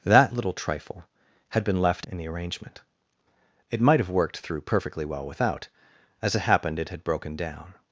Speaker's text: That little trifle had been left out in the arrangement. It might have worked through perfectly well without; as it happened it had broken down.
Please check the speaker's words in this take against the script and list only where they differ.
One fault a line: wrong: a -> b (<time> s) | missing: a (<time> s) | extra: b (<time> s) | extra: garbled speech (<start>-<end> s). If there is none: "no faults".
missing: out (2.1 s)